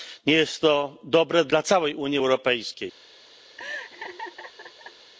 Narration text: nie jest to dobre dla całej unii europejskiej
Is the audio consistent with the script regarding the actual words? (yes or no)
yes